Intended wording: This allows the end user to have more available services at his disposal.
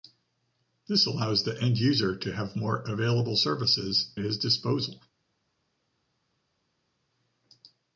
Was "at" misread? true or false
true